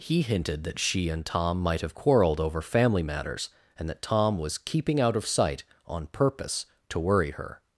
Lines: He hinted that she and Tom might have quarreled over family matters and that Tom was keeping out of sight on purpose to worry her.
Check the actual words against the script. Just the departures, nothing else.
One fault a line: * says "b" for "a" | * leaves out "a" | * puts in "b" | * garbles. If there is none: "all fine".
all fine